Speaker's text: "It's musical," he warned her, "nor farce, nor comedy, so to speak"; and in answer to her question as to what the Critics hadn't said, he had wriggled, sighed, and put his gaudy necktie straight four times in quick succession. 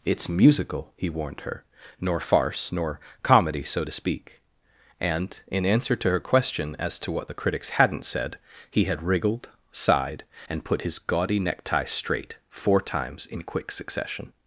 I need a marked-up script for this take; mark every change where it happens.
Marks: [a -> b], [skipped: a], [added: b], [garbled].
"It's musical," he warned her, "nor farce, nor comedy, so to speak"; and in answer to her question as to what the Critics hadn't said, he had wriggled, sighed, and put his gaudy necktie straight four times in quick succession.